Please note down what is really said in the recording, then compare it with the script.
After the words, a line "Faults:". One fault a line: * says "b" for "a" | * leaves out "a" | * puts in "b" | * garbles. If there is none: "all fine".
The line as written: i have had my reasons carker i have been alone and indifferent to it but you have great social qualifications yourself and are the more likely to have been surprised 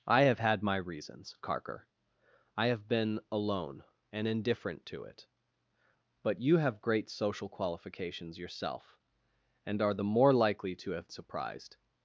i have had my reasons carker i have been alone and indifferent to it but you have great social qualifications yourself and are the more likely to have surprised
Faults:
* leaves out "been"